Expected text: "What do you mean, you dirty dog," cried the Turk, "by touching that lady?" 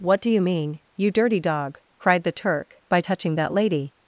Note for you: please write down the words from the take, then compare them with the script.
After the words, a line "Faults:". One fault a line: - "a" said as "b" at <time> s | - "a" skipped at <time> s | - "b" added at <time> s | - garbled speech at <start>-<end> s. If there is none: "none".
"What do you mean, you dirty dog," cried the Turk, "by touching that lady?"
Faults:
none